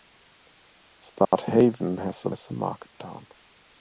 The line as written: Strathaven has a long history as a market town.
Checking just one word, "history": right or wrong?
wrong